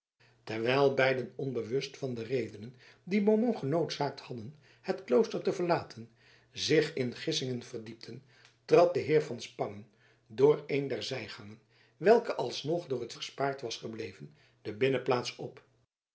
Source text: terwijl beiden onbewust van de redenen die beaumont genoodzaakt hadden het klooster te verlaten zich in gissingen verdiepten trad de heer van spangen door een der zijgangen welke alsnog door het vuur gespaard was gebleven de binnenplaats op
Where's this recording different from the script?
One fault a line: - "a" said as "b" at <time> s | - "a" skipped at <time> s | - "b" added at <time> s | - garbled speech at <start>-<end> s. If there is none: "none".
- "vuur" skipped at 13.1 s